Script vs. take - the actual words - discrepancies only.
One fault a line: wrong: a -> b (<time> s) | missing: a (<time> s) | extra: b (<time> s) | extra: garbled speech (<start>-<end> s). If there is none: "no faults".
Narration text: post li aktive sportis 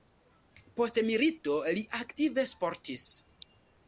extra: milito (1.1 s)